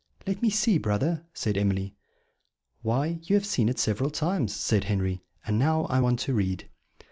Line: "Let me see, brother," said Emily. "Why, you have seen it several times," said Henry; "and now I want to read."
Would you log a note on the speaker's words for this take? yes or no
no